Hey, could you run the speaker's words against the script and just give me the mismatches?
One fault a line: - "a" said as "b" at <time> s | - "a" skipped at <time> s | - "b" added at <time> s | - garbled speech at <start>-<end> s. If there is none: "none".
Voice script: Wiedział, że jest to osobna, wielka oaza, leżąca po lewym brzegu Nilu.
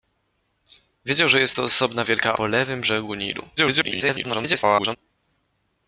- "oaza leżąca" skipped at 2.3 s
- garbled speech at 3.6-5.0 s